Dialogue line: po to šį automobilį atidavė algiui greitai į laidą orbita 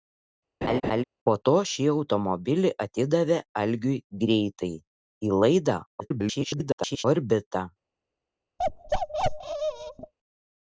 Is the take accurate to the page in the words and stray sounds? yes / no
no